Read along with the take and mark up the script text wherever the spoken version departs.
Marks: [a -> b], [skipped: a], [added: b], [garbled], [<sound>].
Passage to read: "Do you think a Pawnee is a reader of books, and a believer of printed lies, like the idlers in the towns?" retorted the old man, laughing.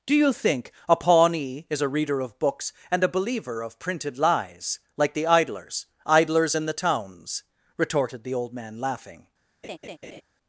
"Do you think a Pawnee is a reader of books, and a believer of printed lies, like the idlers [added: idlers] in the towns?" retorted the old man, laughing. [laugh]